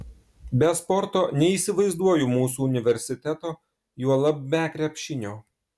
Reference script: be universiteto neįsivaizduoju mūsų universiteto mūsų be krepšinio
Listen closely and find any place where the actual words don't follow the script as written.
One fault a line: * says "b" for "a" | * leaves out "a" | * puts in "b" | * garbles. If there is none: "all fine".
* says "sporto" for "universiteto"
* says "juolab" for "mūsų"